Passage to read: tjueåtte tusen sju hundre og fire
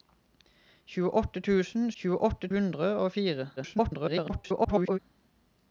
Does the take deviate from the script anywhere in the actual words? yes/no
yes